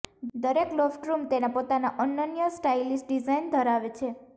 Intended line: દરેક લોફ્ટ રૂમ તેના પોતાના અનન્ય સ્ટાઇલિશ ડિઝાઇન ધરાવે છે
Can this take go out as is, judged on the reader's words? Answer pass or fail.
pass